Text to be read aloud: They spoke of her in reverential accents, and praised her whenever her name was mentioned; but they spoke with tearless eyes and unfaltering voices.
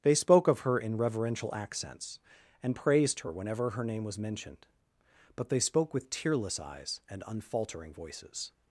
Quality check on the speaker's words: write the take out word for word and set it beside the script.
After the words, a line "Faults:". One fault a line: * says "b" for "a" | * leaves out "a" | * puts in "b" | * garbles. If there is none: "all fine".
They spoke of her in reverential accents, and praised her whenever her name was mentioned; but they spoke with tearless eyes and unfaltering voices.
Faults:
all fine